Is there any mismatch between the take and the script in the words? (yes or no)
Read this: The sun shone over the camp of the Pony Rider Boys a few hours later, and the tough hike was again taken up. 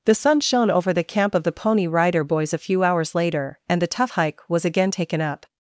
no